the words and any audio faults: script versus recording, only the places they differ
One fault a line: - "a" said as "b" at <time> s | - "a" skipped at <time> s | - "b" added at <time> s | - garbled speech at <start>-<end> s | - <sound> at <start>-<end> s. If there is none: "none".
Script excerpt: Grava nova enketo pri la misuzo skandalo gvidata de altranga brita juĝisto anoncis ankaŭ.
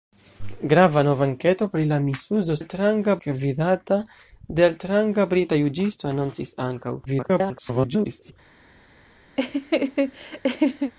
- "skandalo" said as "altranga" at 2.6 s
- garbled speech at 7.1-8.3 s
- laugh at 9.4-10.9 s